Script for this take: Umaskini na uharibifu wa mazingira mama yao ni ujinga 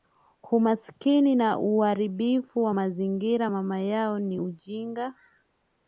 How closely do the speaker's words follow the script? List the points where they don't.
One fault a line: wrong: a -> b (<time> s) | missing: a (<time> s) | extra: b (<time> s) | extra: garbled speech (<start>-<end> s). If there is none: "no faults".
no faults